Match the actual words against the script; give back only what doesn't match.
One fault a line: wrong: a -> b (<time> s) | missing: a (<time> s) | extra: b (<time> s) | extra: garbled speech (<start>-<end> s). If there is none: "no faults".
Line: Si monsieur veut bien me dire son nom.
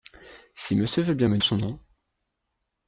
missing: dire (1.4 s)